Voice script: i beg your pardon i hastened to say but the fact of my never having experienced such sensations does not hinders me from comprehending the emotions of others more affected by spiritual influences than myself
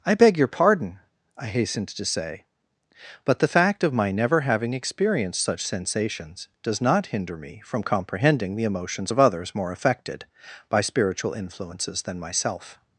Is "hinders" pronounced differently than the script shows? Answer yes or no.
yes